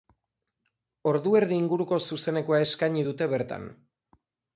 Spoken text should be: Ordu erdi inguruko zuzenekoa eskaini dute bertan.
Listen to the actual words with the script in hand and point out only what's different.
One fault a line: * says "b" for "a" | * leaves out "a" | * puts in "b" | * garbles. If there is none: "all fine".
all fine